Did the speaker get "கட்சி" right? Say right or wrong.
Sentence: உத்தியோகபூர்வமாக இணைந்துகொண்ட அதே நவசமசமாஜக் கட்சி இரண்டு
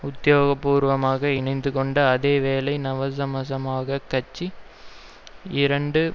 right